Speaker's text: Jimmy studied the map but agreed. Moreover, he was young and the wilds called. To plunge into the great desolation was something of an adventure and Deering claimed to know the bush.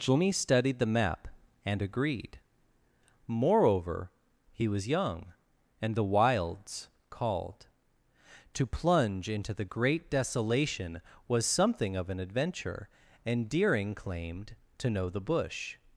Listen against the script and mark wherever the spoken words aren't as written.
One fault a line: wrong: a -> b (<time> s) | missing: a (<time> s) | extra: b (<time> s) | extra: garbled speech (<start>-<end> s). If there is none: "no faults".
wrong: but -> and (1.6 s)